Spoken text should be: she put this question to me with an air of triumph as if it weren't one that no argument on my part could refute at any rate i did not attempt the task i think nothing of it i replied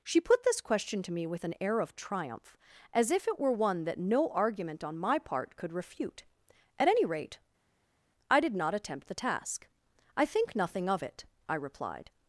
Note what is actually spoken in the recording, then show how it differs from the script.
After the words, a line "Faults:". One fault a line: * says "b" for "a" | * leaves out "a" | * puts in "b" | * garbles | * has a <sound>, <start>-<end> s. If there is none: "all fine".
she put this question to me with an air of triumph as if it were one that no argument on my part could refute at any rate i did not attempt the task i think nothing of it i replied
Faults:
* says "were" for "weren't"